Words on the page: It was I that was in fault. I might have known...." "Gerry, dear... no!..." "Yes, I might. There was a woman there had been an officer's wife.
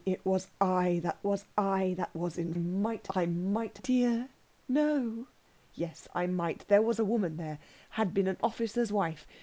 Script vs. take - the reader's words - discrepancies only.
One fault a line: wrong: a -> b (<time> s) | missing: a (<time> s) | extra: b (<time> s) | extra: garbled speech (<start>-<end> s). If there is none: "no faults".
extra: I that was (1.6 s)
wrong: fault -> might (2.5 s)
missing: have known Gerry (3.8 s)